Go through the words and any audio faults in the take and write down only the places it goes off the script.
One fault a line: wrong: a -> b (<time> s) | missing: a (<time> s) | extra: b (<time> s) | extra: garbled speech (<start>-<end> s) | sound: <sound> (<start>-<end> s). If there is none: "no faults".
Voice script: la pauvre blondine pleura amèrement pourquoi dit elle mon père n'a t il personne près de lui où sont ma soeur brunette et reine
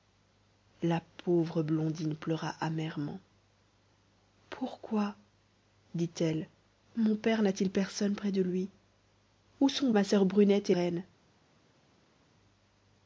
no faults